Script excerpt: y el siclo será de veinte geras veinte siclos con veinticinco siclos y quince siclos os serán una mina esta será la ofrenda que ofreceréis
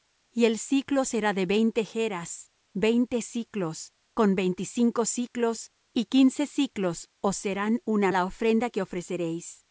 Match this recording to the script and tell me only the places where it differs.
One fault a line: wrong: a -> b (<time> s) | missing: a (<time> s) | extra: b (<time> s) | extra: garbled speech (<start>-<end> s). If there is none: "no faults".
missing: mina esta será (8.1 s)